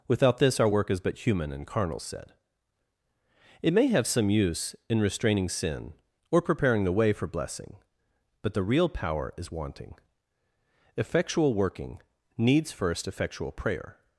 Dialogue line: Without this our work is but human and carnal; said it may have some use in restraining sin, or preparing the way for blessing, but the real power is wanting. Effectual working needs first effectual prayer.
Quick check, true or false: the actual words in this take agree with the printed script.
true